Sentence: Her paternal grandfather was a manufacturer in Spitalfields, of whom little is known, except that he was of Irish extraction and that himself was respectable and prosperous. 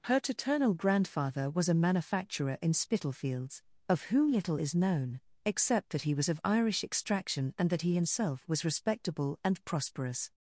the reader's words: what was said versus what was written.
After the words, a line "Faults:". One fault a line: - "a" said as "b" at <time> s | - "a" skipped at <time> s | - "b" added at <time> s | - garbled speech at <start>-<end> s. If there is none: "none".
Her paternal grandfather was a manufacturer in Spitalfields, of whom little is known, except that he was of Irish extraction and that he himself was respectable and prosperous.
Faults:
- "he" added at 7.8 s